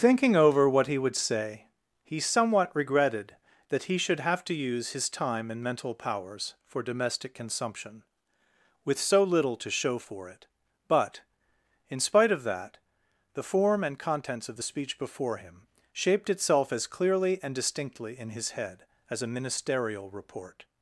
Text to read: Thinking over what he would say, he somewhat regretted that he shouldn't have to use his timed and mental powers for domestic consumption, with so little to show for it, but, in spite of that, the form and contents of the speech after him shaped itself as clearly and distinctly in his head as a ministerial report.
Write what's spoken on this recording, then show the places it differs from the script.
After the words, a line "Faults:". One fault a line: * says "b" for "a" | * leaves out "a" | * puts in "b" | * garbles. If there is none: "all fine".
Thinking over what he would say, he somewhat regretted that he should have to use his time and mental powers for domestic consumption, with so little to show for it, but, in spite of that, the form and contents of the speech before him shaped itself as clearly and distinctly in his head as a ministerial report.
Faults:
* says "should" for "shouldn't"
* says "time" for "timed"
* says "before" for "after"